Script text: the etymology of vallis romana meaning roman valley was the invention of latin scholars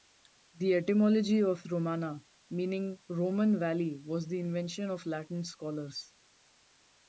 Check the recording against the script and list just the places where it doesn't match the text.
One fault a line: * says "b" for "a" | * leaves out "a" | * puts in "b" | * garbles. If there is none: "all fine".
* leaves out "vallis"